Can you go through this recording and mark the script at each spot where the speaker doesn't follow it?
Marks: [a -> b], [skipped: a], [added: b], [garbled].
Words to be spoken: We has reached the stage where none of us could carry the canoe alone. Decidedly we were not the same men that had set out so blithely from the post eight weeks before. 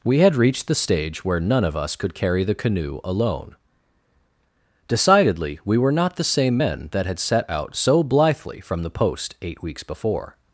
We [has -> had] reached the stage where none of us could carry the canoe alone. Decidedly we were not the same men that had set out so blithely from the post eight weeks before.